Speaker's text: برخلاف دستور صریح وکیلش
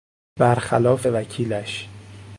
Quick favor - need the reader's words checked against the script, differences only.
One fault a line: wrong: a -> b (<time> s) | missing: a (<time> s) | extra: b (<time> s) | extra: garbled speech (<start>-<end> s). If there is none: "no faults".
missing: دستور صریح (1.1 s)